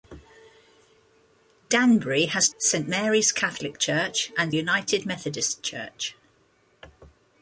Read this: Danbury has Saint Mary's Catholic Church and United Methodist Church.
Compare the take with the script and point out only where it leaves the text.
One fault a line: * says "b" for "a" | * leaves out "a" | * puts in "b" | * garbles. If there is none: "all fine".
all fine